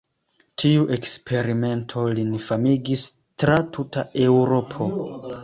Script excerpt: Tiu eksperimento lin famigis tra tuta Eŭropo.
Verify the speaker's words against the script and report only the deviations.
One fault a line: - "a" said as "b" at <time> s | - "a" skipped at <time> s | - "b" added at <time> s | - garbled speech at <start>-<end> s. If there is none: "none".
none